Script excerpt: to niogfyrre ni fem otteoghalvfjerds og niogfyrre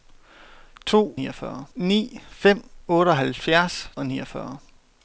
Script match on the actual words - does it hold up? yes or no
yes